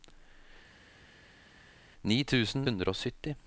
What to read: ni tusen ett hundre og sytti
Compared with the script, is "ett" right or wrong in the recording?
wrong